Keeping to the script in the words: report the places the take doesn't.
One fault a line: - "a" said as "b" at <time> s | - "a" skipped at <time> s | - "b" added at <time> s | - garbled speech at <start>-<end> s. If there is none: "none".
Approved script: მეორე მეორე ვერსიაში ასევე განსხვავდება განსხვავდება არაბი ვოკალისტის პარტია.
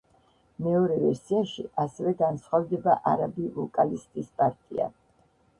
- "მეორე" skipped at 0.9 s
- "განსხვავდება" skipped at 3.0 s